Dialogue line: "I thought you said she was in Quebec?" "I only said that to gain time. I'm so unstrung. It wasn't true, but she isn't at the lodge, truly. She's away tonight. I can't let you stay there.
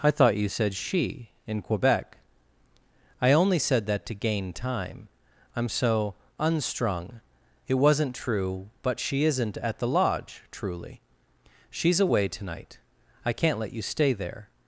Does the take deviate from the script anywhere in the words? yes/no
yes